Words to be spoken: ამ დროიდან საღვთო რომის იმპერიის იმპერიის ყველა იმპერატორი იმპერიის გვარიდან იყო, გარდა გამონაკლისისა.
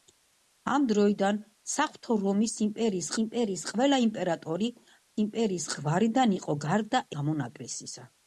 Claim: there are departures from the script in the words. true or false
false